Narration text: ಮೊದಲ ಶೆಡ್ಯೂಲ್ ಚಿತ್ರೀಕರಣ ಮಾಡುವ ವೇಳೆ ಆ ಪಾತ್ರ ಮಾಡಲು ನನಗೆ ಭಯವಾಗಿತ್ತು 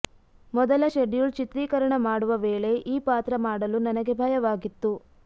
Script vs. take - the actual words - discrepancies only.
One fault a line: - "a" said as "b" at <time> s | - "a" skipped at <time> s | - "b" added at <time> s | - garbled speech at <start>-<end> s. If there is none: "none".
- "ಆ" said as "ಈ" at 2.9 s